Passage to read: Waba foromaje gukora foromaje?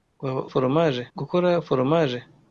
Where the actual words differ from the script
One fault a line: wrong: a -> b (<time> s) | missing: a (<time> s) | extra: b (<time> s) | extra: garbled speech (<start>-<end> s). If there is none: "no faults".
no faults